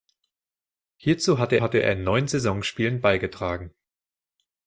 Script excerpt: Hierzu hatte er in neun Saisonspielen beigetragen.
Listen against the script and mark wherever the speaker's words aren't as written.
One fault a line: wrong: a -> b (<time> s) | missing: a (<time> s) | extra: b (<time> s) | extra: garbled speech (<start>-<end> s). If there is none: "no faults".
extra: hatte (1.6 s)